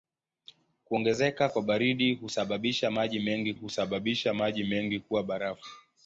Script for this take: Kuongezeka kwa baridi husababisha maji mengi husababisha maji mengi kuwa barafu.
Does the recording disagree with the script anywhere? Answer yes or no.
no